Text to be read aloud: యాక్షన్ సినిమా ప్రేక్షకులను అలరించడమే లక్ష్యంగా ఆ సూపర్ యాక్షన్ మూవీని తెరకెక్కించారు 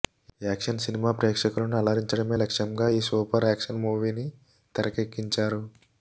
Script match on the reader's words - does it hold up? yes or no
no